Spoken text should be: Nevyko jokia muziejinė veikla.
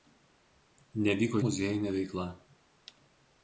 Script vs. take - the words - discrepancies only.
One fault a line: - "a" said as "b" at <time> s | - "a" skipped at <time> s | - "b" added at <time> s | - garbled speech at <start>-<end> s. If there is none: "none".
- "jokia" skipped at 1.4 s